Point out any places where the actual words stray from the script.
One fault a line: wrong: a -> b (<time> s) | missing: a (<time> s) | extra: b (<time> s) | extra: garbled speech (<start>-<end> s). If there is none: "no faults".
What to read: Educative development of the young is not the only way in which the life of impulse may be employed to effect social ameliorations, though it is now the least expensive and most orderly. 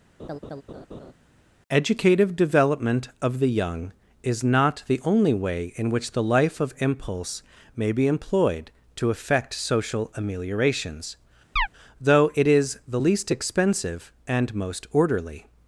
missing: now (12.8 s)